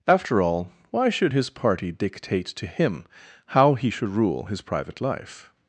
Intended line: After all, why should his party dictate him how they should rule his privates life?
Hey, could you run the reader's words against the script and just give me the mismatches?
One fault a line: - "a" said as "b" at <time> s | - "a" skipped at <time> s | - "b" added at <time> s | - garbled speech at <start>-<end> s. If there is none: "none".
- "to" added at 2.5 s
- "they" said as "he" at 3.7 s
- "privates" said as "private" at 4.6 s